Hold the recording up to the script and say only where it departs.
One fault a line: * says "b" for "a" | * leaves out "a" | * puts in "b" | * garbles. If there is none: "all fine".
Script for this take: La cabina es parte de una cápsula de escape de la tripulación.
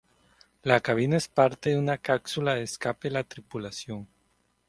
all fine